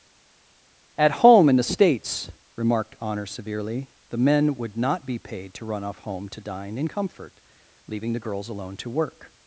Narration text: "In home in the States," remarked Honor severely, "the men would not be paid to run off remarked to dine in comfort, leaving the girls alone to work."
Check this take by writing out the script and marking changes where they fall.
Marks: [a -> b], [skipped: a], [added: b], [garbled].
["In -> At] home in the States," remarked Honor severely, "the men would not be paid to run off [remarked -> home] to dine in comfort, leaving the girls alone to work."